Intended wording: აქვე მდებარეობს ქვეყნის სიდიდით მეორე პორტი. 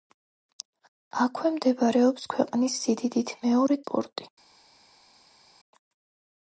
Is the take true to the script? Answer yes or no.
yes